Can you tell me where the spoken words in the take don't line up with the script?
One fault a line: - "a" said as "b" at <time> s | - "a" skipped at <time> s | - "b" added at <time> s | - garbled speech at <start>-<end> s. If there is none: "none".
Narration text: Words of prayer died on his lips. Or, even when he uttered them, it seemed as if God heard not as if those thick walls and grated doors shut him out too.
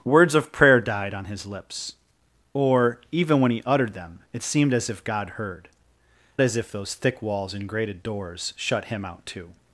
- "not" skipped at 5.7 s